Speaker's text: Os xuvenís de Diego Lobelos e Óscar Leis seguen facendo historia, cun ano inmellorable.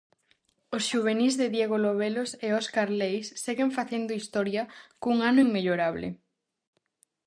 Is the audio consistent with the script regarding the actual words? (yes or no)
yes